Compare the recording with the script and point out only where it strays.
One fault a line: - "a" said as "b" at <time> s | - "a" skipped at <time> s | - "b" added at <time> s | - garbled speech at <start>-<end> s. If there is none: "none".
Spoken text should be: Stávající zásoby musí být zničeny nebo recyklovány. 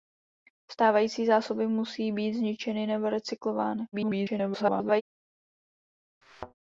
- garbled speech at 3.9-5.0 s